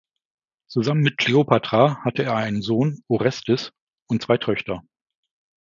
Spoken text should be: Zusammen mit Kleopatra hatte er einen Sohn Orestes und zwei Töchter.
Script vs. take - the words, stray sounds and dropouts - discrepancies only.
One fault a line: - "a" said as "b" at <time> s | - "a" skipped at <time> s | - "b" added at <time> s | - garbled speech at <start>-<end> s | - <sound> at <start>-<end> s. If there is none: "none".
none